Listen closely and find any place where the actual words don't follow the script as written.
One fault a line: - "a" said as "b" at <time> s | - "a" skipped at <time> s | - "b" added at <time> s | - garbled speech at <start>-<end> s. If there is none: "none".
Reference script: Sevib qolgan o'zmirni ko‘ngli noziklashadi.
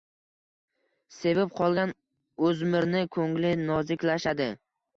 none